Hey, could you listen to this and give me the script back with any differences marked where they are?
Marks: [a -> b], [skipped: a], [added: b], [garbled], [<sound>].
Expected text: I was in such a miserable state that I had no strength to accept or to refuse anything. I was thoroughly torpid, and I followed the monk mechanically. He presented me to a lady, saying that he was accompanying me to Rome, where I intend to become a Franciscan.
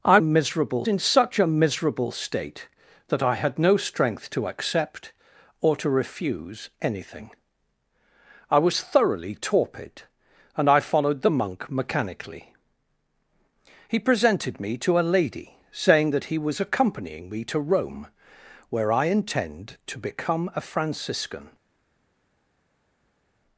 I [was -> miserable] in such a miserable state that I had no strength to accept or to refuse anything. I was thoroughly torpid, and I followed the monk mechanically. He presented me to a lady, saying that he was accompanying me to Rome, where I intend to become a Franciscan.